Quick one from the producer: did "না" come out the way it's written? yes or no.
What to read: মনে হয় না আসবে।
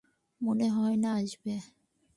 yes